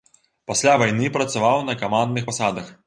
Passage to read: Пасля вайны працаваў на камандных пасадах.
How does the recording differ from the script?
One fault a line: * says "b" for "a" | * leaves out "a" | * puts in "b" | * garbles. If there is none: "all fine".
all fine